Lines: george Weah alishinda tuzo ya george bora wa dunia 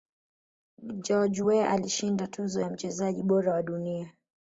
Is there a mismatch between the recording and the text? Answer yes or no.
yes